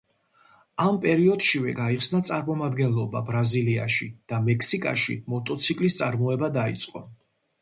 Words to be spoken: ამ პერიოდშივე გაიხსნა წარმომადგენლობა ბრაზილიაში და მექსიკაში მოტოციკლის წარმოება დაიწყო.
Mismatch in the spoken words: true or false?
false